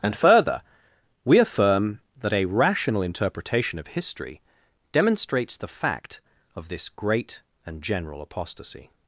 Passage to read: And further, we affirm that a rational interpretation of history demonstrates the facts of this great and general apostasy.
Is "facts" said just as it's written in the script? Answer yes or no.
no